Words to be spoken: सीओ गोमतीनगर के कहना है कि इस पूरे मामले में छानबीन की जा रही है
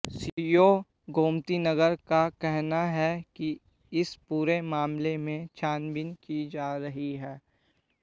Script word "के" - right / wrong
wrong